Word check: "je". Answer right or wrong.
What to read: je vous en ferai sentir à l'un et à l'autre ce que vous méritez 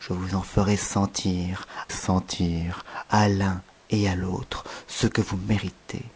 right